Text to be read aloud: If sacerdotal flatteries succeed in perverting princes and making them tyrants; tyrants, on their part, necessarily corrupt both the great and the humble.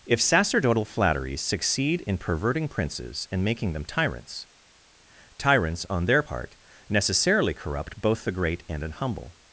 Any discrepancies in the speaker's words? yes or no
yes